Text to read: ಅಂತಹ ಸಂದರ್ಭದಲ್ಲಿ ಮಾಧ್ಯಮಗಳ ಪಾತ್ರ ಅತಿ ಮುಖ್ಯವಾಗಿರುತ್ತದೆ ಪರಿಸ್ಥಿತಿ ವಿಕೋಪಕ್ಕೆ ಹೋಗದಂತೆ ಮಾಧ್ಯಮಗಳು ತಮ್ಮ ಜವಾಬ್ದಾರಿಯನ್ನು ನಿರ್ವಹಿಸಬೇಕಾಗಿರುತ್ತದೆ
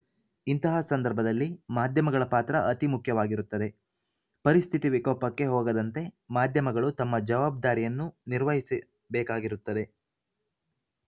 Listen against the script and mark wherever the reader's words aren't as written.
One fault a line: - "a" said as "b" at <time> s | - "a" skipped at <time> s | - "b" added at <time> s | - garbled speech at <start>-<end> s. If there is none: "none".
- "ಅಂತಹ" said as "ಇಂತಹ" at 0.5 s